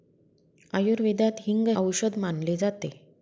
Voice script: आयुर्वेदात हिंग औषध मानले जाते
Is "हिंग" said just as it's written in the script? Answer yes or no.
yes